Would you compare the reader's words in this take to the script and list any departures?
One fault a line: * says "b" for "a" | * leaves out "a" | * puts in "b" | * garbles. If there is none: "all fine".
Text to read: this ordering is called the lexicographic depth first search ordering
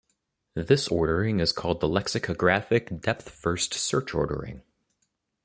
all fine